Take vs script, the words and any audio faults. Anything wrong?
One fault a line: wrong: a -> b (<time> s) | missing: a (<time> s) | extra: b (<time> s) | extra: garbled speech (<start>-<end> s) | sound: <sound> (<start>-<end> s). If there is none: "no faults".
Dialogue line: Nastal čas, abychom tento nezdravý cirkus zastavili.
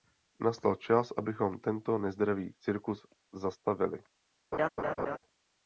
sound: laugh (4.5-5.2 s)